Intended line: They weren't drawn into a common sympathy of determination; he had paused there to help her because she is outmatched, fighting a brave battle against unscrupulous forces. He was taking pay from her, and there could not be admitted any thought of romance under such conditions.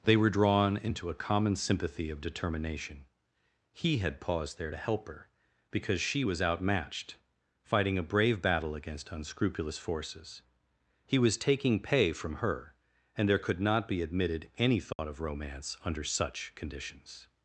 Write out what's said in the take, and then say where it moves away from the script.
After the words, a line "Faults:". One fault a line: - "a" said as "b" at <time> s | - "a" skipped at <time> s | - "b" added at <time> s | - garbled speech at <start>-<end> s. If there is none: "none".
They were drawn into a common sympathy of determination; he had paused there to help her because she was outmatched, fighting a brave battle against unscrupulous forces. He was taking pay from her, and there could not be admitted any thought of romance under such conditions.
Faults:
- "weren't" said as "were" at 0.2 s
- "is" said as "was" at 6.2 s